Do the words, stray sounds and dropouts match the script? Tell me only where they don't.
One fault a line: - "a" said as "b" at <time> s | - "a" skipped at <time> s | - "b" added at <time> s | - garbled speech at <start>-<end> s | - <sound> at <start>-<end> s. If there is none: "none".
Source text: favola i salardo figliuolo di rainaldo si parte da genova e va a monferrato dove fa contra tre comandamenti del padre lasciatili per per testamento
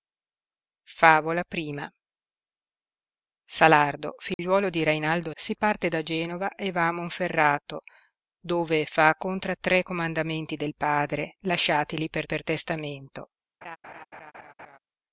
- dropout at 4.3-4.4 s
- laugh at 13.6-14.8 s